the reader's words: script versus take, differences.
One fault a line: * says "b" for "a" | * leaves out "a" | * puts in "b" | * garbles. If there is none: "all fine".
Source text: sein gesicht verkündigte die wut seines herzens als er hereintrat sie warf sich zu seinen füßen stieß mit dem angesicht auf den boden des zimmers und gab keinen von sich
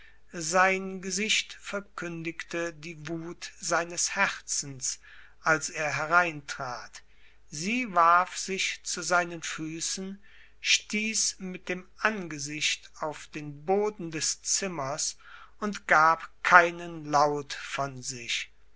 * puts in "laut"